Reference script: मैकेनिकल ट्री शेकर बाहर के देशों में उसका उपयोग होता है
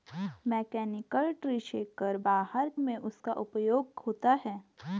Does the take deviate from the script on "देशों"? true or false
true